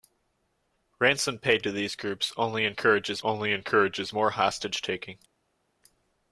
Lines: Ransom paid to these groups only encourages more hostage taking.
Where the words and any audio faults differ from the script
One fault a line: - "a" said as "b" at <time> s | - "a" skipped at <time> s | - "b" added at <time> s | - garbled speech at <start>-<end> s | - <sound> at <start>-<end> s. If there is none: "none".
- "only encourages" added at 3.2 s